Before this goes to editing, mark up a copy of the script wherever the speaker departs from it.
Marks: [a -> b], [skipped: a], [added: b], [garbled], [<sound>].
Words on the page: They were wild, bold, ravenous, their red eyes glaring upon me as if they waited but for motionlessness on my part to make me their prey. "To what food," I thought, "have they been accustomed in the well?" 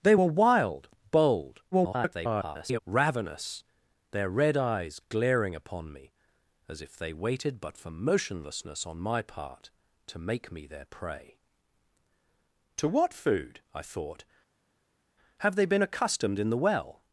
They were wild, bold, [garbled] ravenous, their red eyes glaring upon me as if they waited but for motionlessness on my part to make me their prey. "To what food," I thought, "have they been accustomed in the well?"